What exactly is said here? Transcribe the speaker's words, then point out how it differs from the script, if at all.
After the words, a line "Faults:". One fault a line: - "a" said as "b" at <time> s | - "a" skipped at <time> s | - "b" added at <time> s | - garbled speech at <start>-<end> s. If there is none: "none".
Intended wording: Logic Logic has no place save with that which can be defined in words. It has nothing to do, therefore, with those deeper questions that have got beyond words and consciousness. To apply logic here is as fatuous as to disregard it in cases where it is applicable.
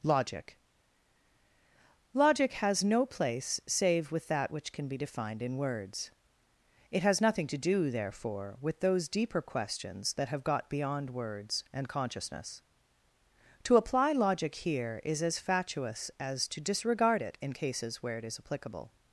Logic Logic has no place save with that which can be defined in words. It has nothing to do, therefore, with those deeper questions that have got beyond words and consciousness. To apply logic here is as fatuous as to disregard it in cases where it is applicable.
Faults:
none